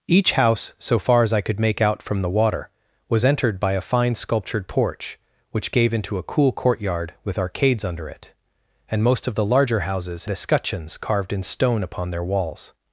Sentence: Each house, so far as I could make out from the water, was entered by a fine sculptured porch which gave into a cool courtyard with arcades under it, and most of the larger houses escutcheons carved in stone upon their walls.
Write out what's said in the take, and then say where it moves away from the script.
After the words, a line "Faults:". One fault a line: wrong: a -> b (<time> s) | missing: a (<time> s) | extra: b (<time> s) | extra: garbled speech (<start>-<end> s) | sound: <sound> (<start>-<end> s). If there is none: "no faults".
Each house, so far as I could make out from the water, was entered by a fine sculptured porch which gave into a cool courtyard with arcades under it, and most of the larger houses escutcheons carved in stone upon their walls.
Faults:
no faults